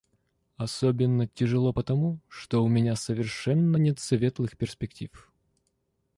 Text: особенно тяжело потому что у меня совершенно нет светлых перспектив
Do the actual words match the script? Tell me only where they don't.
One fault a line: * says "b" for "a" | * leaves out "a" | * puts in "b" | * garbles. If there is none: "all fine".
all fine